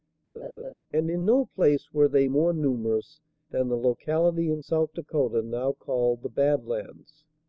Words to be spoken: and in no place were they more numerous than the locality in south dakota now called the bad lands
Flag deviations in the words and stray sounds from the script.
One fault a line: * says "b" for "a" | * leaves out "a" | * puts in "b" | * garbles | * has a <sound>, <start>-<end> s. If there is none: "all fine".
* has a laugh, 0.3-0.7 s